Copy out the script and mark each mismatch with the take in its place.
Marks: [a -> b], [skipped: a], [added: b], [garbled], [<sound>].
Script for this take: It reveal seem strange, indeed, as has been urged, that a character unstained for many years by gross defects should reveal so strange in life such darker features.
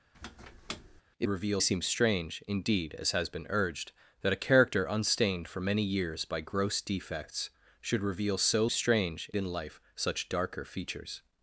[squeak] It reveal seem strange, indeed, as has been urged, that a character unstained for many years by gross defects should reveal so strange in life such darker features.